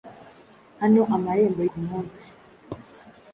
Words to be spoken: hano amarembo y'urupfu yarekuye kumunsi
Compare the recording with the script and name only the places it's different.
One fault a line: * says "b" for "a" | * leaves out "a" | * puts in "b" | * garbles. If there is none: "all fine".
* leaves out "y'urupfu yarekuye"